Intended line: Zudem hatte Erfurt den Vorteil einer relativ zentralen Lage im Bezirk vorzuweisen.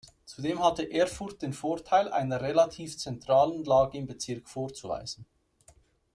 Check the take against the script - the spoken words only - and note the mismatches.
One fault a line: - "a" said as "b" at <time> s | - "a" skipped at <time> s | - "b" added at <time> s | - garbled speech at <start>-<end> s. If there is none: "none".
none